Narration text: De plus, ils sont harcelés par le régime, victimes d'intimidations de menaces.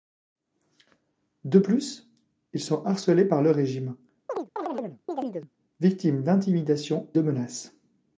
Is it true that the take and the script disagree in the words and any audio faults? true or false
true